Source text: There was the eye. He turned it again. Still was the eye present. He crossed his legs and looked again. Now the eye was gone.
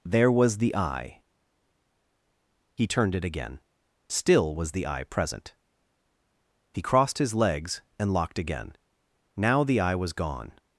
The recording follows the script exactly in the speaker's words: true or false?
false